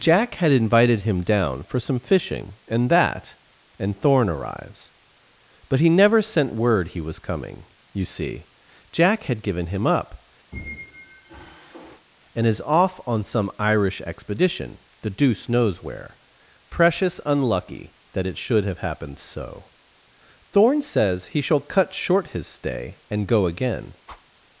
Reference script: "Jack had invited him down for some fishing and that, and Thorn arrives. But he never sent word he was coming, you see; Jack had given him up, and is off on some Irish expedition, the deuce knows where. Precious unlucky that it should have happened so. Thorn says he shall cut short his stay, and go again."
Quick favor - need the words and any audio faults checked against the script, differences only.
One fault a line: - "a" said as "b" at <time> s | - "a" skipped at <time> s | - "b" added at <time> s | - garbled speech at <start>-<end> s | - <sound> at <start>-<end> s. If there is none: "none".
- squeak at 10.5-12.1 s
- whoosh at 24.1-24.3 s